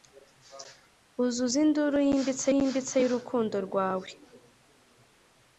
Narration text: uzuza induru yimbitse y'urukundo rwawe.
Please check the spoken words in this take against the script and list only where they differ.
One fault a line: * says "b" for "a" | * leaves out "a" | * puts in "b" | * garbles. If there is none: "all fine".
* puts in "yimbitse"